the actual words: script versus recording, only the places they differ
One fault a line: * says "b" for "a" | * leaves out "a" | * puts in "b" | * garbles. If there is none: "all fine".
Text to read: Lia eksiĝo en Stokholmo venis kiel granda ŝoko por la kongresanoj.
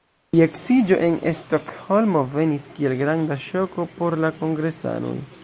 all fine